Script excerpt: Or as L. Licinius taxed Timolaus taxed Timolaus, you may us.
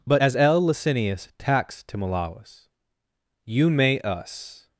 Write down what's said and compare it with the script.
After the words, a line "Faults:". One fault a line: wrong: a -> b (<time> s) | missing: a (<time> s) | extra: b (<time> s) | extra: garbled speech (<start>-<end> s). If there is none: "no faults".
But as L. Licinius taxed Timolaus, you may us.
Faults:
wrong: Or -> But (0.1 s)
missing: taxed Timolaus (2.7 s)